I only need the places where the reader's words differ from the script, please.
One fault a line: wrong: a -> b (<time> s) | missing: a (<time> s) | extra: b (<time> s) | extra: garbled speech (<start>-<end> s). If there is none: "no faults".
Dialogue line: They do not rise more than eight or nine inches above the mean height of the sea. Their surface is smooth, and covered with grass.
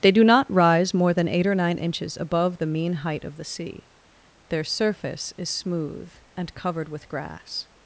no faults